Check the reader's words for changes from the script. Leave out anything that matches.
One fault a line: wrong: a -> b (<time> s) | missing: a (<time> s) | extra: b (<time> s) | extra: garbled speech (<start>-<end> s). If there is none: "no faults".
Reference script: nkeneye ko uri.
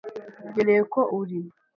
no faults